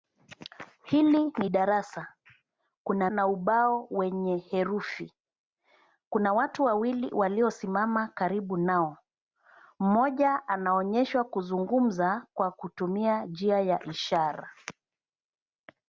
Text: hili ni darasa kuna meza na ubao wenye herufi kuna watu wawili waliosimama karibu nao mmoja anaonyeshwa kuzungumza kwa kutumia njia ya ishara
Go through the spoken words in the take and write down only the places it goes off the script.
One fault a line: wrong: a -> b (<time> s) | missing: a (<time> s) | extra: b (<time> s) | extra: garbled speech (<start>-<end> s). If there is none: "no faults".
missing: meza (3.1 s)